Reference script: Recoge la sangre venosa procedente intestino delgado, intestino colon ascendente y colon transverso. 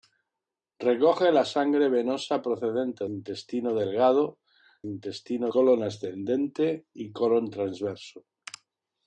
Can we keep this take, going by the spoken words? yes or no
yes